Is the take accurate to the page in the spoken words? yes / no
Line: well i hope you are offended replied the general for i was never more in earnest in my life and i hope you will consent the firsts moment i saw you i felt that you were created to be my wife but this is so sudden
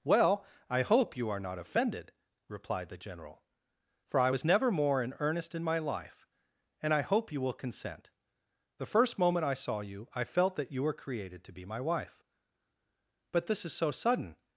no